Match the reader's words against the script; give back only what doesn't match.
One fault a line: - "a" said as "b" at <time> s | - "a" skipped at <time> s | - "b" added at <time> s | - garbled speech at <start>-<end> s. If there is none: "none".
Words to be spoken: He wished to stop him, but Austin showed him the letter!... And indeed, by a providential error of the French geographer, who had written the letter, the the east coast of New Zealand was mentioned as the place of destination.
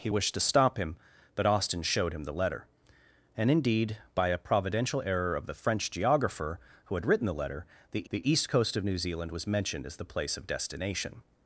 none